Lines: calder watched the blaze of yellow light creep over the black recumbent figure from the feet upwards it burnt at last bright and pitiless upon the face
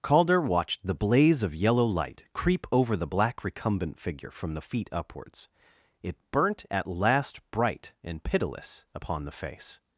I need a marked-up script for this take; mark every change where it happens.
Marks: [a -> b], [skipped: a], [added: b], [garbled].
calder watched the blaze of yellow light creep over the black recumbent figure from the feet upwards it burnt at last bright and pitiless upon the face